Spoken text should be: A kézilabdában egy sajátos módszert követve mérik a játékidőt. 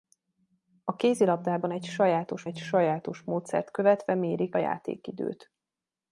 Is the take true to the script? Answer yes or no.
no